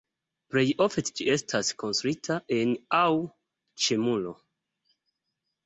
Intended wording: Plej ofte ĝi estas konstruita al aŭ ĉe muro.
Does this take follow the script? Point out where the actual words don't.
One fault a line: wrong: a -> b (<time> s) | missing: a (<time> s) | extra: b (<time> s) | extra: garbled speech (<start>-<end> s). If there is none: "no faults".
wrong: al -> en (2.6 s)